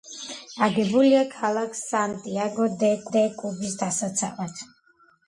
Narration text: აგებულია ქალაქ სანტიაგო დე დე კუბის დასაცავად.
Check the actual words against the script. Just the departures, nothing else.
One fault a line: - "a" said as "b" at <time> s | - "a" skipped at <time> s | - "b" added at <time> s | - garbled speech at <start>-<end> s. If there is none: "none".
none